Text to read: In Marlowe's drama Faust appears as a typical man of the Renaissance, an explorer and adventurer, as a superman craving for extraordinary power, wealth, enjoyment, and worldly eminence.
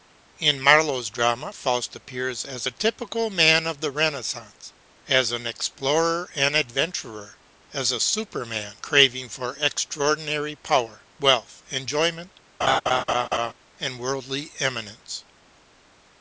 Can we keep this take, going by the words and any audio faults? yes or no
no